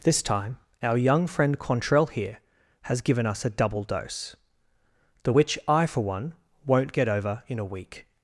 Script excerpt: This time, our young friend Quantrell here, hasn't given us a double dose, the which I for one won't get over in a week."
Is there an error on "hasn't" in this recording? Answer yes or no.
yes